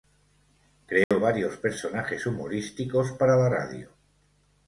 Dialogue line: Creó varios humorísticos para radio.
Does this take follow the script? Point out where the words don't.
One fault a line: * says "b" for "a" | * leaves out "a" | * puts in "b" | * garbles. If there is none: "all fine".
* puts in "personajes"
* puts in "la"